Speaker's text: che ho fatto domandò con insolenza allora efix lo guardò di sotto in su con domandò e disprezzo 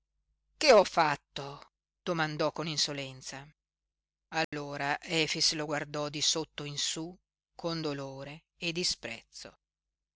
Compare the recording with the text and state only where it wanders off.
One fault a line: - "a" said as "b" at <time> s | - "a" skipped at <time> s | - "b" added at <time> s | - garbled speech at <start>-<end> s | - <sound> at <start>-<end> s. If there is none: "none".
- dropout at 4.4-4.5 s
- "domandò" said as "dolore" at 7.8 s